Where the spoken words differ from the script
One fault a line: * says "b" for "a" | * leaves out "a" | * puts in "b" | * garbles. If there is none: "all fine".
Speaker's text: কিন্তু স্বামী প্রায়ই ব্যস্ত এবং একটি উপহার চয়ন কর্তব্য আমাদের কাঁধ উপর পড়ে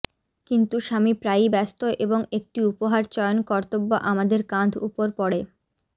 all fine